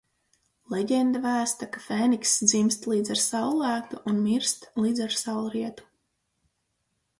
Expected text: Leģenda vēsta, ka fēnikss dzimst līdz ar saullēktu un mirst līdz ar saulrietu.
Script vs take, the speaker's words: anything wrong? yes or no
no